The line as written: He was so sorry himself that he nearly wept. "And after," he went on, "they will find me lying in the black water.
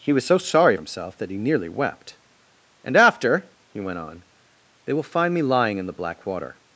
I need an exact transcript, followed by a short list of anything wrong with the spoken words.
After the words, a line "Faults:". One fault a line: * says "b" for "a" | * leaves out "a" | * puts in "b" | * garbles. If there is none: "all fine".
He was so sorry himself that he nearly wept. "And after," he went on, "they will find me lying in the black water.
Faults:
all fine